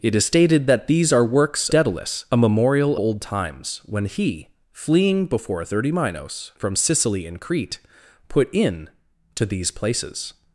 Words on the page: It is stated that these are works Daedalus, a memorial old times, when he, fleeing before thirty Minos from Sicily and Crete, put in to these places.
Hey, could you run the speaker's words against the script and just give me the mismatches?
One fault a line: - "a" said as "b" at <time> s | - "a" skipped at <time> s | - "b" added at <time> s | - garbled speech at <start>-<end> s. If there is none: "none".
none